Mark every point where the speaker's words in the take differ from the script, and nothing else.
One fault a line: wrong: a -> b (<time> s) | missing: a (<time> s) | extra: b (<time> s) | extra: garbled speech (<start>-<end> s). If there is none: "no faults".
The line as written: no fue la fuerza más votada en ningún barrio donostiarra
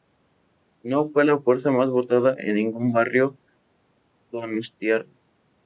no faults